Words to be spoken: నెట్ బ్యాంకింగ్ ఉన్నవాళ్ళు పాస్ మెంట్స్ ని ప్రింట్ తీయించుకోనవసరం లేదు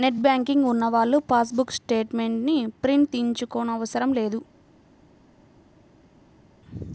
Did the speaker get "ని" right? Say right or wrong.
right